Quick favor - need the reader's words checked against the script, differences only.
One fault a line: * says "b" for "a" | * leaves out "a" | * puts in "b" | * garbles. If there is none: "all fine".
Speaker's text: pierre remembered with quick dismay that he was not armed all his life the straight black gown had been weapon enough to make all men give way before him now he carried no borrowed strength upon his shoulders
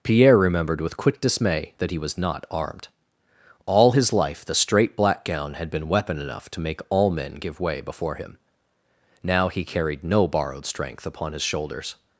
all fine